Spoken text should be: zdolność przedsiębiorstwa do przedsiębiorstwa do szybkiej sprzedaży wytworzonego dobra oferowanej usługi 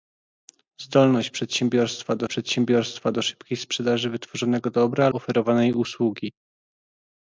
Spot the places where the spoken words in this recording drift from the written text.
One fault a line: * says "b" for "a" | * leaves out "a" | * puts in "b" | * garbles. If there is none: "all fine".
all fine